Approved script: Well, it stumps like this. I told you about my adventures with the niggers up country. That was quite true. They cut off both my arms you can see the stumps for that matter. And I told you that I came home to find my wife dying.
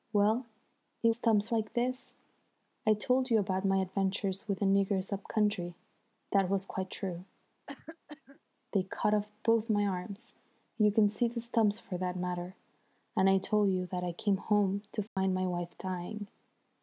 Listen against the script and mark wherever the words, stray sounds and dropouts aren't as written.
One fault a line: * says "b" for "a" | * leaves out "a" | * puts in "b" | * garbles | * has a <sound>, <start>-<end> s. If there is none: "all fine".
* has a cough, 7.7-8.4 s
* has a dropout, 15.1-15.2 s